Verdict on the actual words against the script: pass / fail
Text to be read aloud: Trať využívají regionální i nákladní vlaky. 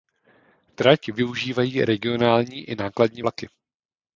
pass